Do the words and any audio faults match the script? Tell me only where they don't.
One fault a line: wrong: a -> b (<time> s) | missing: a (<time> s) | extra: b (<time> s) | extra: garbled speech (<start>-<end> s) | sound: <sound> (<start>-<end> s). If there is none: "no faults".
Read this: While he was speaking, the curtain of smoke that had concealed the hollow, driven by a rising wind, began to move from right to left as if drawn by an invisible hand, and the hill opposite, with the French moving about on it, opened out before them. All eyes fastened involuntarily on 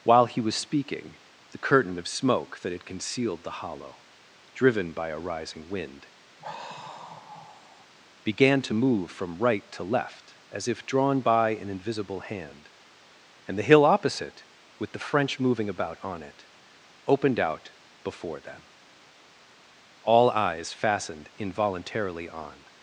sound: sigh (6.4-7.9 s)